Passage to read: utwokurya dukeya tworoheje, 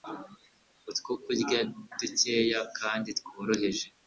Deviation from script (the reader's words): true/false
true